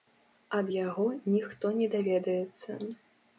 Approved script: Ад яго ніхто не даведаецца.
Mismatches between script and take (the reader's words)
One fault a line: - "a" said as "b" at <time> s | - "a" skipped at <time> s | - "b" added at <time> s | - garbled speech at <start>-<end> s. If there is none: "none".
none